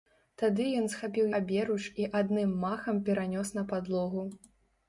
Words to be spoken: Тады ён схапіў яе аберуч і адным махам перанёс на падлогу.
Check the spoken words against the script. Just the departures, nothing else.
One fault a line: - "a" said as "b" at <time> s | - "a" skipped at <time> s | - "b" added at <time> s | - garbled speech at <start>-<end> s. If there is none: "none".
- "яе" skipped at 1.3 s